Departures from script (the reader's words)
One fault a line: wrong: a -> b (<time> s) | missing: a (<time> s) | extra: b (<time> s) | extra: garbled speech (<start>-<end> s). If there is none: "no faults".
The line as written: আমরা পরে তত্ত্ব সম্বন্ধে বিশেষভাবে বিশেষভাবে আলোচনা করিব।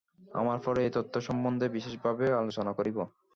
extra: এই (0.8 s)
missing: বিশেষভাবে (2.3 s)